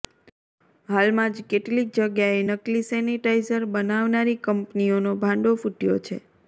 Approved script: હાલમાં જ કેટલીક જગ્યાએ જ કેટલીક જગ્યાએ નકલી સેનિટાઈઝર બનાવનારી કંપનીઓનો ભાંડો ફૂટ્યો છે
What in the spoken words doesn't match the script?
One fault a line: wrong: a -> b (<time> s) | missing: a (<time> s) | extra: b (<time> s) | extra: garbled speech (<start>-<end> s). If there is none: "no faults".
missing: જ કેટલીક જગ્યાએ (2.4 s)